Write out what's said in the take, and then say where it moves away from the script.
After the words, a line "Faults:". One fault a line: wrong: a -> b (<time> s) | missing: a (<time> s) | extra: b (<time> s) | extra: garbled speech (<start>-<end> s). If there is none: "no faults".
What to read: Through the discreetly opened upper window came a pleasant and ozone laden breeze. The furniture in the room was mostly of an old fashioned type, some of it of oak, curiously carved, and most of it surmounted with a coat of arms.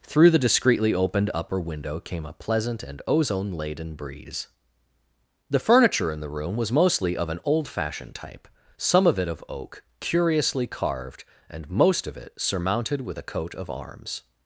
Through the discreetly opened upper window came a pleasant and ozone laden breeze. The furniture in the room was mostly of an old fashioned type, some of it of oak, curiously carved, and most of it surmounted with a coat of arms.
Faults:
no faults